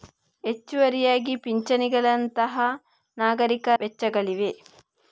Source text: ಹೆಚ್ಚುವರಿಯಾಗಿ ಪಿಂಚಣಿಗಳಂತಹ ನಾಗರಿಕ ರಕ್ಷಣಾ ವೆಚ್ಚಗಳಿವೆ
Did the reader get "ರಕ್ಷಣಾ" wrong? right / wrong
wrong